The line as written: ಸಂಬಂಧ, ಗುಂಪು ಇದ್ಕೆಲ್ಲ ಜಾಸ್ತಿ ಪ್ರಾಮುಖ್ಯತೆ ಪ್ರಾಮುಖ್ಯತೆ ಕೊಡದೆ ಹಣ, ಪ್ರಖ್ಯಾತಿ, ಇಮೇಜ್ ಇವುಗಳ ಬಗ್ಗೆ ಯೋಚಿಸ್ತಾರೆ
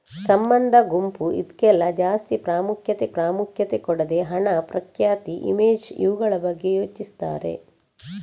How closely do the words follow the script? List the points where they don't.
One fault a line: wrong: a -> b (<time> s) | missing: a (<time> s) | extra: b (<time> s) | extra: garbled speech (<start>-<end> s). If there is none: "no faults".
no faults